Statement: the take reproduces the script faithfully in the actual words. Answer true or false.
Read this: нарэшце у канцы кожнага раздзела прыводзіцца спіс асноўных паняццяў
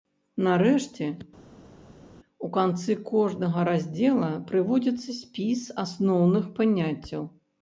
true